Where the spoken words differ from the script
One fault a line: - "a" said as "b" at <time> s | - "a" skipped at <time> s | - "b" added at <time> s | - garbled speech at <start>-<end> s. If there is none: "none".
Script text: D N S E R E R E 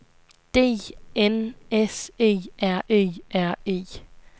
none